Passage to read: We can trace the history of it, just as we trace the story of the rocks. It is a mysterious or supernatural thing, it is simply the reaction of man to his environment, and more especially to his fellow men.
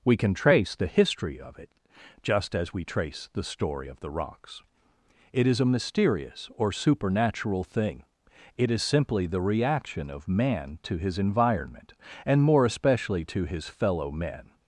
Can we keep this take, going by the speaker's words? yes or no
yes